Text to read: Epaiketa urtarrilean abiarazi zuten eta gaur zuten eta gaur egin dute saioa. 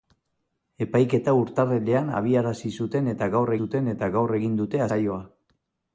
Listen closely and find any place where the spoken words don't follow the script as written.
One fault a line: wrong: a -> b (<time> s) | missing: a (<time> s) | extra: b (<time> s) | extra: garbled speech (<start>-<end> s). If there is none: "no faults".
no faults